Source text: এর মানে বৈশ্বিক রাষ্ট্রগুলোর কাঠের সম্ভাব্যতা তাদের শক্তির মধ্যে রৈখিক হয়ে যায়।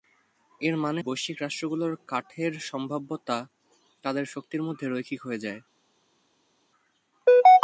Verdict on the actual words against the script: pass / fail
pass